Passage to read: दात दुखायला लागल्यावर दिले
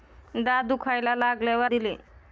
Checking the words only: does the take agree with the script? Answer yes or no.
yes